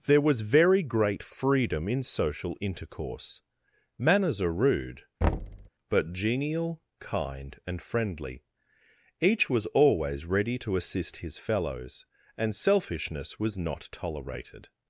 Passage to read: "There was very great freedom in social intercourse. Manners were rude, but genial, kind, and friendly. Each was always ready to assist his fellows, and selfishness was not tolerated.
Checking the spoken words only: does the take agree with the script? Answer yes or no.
no